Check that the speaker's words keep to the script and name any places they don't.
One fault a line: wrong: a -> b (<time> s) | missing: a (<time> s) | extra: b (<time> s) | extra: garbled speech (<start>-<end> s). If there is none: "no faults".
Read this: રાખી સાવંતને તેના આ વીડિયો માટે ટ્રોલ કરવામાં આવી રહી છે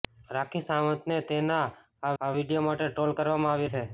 extra: આ (2.2 s)
missing: રહી (3.7 s)